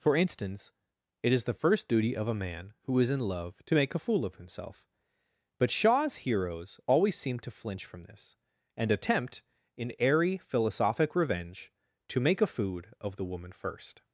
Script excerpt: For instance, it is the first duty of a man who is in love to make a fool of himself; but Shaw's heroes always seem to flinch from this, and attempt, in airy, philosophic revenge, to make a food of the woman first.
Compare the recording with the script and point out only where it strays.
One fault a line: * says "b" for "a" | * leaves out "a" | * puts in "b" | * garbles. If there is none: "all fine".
all fine